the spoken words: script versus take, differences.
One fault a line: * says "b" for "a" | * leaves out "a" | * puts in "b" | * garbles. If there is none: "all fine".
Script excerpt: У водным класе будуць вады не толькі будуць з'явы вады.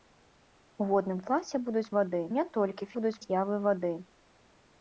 all fine